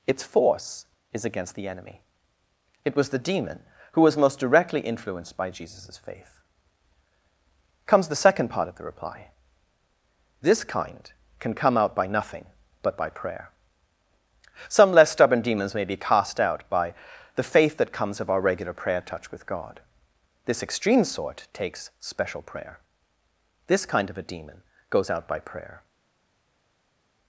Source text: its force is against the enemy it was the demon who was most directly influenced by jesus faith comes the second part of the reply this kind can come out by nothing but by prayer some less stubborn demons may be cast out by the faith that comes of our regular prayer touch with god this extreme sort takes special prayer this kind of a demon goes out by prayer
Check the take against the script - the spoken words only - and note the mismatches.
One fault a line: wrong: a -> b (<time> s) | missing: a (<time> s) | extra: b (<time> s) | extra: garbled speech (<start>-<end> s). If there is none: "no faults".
no faults